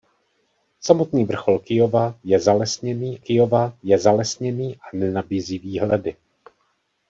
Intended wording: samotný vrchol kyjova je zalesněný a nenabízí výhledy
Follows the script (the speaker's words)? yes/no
no